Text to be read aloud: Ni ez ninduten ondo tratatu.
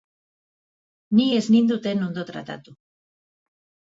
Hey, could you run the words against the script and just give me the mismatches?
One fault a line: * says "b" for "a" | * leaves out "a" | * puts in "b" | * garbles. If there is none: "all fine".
all fine